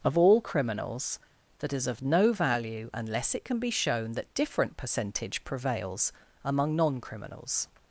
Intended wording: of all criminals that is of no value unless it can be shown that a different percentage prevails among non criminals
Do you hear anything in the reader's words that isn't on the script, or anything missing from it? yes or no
yes